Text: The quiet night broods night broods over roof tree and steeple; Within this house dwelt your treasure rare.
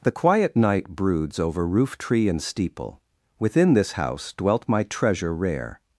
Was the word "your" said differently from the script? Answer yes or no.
yes